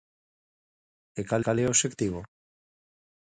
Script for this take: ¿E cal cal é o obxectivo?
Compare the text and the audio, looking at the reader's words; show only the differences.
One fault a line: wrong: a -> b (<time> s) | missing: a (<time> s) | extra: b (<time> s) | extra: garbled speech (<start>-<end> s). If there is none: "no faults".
no faults